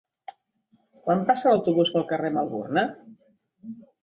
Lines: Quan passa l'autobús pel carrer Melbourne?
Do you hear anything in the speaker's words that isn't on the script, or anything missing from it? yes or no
no